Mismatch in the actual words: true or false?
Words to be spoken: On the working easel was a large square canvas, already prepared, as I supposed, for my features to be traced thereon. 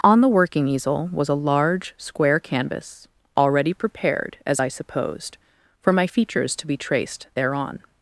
false